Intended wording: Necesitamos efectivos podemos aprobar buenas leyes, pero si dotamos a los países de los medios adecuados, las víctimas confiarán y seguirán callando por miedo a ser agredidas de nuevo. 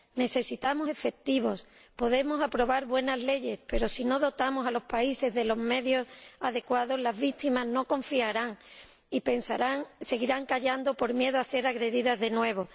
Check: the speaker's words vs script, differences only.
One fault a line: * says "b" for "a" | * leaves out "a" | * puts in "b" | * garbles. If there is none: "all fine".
* puts in "no"
* puts in "no"